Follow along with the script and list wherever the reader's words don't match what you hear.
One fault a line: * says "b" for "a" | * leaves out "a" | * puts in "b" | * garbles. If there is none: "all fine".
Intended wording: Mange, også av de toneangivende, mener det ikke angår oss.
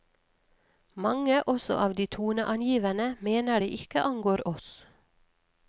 all fine